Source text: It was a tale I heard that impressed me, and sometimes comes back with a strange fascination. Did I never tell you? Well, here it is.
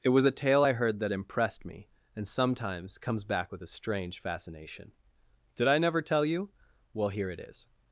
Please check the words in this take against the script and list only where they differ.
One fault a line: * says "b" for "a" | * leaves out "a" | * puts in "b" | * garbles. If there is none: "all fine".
all fine